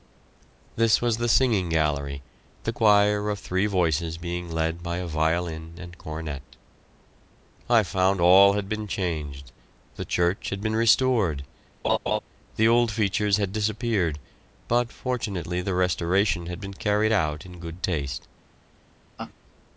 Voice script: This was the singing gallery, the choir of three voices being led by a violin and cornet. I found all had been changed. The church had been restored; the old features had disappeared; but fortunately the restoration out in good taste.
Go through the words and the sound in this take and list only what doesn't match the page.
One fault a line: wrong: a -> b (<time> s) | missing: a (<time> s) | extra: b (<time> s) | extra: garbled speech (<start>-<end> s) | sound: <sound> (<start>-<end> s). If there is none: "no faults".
sound: laugh (11.8-12.2 s)
extra: had been carried (16.4 s)
sound: laugh (19.2-19.3 s)